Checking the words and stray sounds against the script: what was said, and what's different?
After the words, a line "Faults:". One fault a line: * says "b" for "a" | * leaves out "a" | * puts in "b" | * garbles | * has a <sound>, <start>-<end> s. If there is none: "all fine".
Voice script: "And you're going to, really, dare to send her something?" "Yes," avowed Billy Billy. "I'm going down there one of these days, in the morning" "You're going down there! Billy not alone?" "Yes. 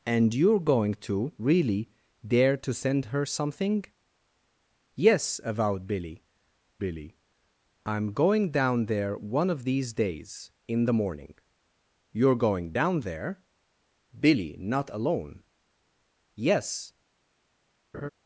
"And you're going to, really, dare to send her something?" "Yes," avowed Billy Billy. "I'm going down there one of these days, in the morning" "You're going down there! Billy not alone?" "Yes.
Faults:
* has a laugh, 17.9-18.1 s